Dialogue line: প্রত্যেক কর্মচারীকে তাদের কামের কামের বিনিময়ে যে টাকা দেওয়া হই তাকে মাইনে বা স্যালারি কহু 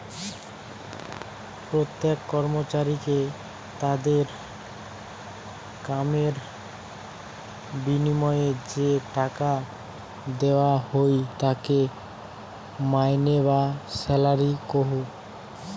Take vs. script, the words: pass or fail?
fail